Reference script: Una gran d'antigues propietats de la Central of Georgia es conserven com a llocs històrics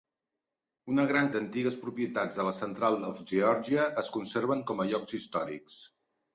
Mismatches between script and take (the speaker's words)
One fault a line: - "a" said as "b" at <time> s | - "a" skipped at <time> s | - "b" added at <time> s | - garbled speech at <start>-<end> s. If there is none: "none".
none